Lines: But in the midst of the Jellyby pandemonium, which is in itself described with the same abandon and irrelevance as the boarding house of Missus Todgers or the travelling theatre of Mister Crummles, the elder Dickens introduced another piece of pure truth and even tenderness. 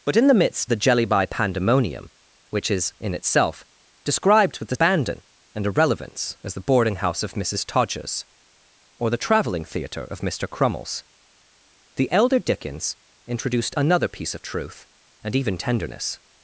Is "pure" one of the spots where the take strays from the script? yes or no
yes